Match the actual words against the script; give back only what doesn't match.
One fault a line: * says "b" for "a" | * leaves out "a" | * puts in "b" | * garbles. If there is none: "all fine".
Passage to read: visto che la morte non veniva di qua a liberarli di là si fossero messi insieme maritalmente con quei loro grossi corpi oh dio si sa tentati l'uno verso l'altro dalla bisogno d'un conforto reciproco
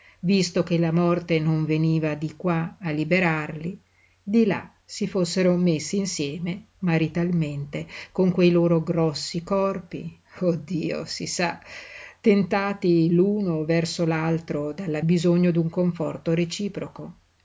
all fine